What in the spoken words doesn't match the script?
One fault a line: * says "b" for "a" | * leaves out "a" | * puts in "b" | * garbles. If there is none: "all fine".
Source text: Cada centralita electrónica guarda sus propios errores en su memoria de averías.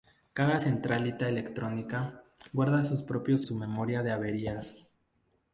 * leaves out "errores en"